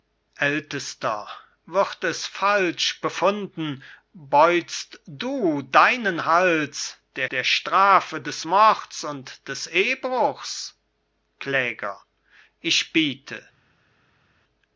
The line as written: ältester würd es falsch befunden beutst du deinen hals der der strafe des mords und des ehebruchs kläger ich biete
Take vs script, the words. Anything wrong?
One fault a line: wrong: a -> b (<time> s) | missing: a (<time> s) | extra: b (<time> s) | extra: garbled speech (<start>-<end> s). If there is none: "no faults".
no faults